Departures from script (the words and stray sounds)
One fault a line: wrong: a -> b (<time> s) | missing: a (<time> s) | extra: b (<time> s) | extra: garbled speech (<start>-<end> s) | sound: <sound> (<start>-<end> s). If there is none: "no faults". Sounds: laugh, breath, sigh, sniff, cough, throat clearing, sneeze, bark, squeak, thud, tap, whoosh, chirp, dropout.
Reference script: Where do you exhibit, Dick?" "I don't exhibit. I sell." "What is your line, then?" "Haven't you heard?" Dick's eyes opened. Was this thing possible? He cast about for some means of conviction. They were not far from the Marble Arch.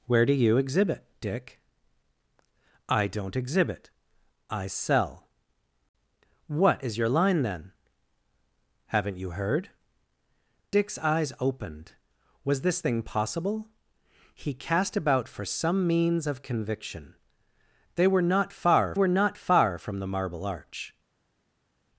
extra: were not far (18.9 s)